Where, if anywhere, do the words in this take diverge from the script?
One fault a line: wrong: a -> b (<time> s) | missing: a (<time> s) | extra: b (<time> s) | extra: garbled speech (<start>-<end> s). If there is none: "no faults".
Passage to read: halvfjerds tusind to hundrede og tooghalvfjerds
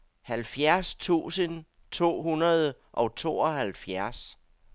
no faults